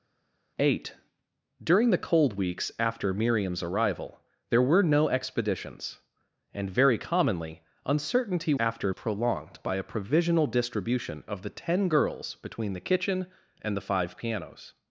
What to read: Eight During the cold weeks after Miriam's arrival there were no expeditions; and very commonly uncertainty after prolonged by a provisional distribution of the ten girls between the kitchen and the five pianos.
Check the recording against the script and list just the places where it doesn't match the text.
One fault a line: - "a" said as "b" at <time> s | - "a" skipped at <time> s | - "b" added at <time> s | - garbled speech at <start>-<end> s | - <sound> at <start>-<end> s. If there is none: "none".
none